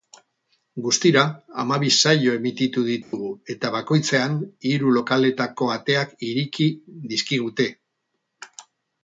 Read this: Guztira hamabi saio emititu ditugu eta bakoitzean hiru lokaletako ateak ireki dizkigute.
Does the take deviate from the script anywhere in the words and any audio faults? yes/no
yes